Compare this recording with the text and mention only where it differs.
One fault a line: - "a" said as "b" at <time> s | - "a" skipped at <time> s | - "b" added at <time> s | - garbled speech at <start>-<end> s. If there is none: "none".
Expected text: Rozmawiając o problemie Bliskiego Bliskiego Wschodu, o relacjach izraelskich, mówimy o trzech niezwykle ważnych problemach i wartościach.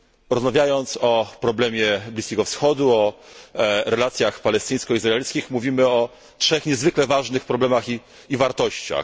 - "Bliskiego" skipped at 2.5 s
- "palestyńsko" added at 4.4 s